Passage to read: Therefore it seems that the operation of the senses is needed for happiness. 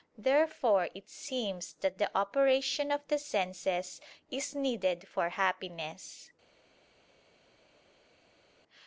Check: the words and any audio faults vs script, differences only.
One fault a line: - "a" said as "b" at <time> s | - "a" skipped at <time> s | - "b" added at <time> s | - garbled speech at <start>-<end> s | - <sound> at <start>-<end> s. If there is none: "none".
none